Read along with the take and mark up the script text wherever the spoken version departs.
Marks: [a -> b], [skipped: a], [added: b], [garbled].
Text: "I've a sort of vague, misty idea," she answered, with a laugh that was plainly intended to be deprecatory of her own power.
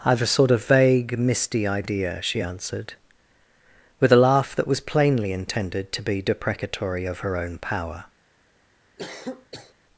"I've a sort of vague, misty idea," she answered, with a laugh that was plainly intended to be deprecatory of her own power.